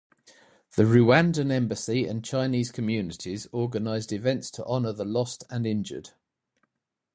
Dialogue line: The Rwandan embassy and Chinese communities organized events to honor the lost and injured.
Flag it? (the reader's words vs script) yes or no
no